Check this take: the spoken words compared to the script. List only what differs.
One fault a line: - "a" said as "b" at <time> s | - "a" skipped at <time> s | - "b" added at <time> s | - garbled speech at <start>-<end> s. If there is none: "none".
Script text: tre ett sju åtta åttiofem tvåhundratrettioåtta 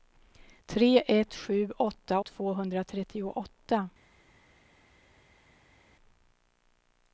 - "åttiofem" skipped at 2.2 s